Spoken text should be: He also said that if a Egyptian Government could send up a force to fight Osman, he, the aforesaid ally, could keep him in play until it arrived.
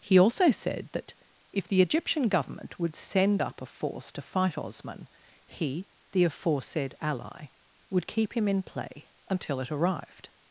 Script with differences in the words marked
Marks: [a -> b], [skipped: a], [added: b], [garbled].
He also said that if [a -> the] Egyptian Government [could -> would] send up a force to fight Osman, he, the aforesaid ally, [could -> would] keep him in play until it arrived.